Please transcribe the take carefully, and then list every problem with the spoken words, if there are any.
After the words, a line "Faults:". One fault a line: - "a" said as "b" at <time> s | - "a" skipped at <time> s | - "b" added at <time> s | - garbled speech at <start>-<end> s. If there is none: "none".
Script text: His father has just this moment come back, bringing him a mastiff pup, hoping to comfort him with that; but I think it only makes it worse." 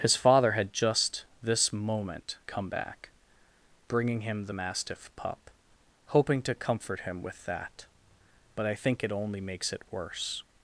His father had just this moment come back, bringing him the mastiff pup, hoping to comfort him with that; but I think it only makes it worse."
Faults:
- "has" said as "had" at 0.5 s
- "a" said as "the" at 4.4 s